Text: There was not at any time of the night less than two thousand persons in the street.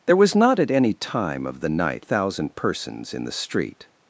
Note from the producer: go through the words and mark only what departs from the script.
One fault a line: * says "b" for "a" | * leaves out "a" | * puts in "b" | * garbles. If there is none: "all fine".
* leaves out "less than two"